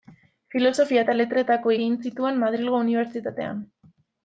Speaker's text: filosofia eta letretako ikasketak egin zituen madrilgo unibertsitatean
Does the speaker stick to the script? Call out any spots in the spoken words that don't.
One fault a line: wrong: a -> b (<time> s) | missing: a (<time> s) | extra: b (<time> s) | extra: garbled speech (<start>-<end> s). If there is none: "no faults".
missing: ikasketak (1.7 s)